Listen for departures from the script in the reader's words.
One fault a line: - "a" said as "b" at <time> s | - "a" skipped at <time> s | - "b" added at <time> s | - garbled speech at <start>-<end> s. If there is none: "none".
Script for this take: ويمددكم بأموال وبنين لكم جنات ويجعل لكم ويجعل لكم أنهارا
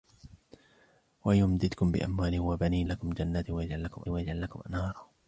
none